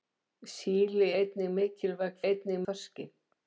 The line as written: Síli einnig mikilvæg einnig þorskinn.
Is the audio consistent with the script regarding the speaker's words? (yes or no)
yes